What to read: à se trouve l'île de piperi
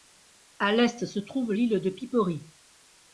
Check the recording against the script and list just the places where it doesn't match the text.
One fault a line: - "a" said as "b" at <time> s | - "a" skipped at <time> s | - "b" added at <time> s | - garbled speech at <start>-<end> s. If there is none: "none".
- "l'est" added at 0.7 s